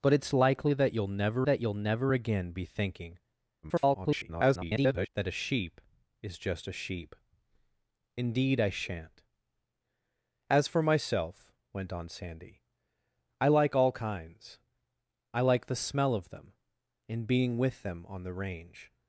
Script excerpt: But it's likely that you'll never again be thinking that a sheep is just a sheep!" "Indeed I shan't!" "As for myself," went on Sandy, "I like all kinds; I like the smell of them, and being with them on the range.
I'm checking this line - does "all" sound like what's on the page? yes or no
yes